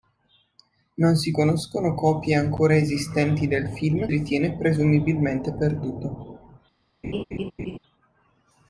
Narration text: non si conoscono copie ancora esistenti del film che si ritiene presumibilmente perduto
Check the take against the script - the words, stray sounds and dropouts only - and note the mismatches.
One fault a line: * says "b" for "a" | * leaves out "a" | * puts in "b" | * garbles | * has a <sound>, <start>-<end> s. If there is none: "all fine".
* leaves out "che si"
* has a laugh, 7.0-7.8 s